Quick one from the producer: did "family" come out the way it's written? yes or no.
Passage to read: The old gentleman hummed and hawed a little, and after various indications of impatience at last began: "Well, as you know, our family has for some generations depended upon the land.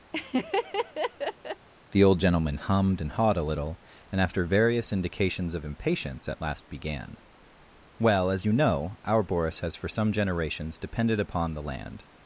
no